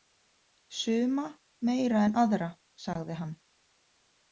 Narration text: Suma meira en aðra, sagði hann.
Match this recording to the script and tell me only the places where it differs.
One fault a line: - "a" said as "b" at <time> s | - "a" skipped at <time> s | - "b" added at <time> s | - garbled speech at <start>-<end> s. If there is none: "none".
none